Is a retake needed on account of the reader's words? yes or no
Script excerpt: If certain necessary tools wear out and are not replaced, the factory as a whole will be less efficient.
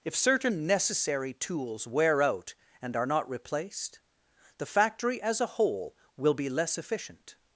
no